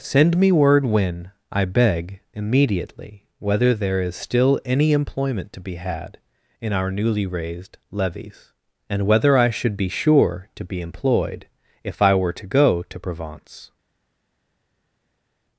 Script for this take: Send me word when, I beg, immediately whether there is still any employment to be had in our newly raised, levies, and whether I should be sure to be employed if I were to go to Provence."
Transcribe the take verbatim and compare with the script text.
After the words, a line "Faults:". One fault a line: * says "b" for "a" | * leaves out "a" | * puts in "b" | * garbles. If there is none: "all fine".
Send me word when, I beg, immediately whether there is still any employment to be had in our newly raised, levies, and whether I should be sure to be employed if I were to go to Provence."
Faults:
all fine